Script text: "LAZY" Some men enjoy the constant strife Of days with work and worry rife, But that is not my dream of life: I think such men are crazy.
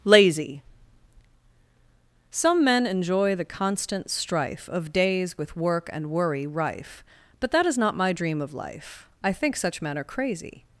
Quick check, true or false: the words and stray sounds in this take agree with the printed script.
true